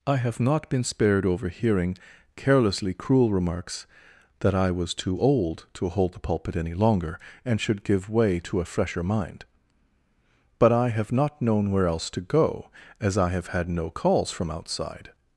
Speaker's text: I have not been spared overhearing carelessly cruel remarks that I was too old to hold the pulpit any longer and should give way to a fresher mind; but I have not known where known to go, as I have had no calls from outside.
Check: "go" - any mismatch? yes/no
no